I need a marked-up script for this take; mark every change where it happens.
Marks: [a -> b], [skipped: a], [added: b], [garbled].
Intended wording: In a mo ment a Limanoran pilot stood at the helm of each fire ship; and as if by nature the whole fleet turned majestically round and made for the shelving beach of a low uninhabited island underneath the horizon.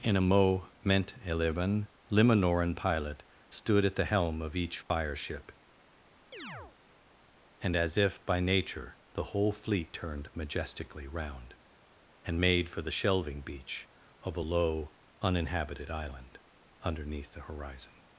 In a [mo ment a -> moment eleven] Limanoran pilot stood at the helm of each fire ship; and as if by nature the whole fleet turned majestically round and made for the shelving beach of a low uninhabited island underneath the horizon.